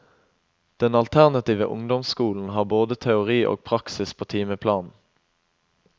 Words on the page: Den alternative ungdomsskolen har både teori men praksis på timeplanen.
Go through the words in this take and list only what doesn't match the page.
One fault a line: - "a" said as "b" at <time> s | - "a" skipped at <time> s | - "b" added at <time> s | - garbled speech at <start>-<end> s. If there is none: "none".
- "men" said as "og" at 3.5 s